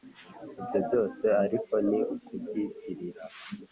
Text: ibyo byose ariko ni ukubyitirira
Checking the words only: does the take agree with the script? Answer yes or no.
yes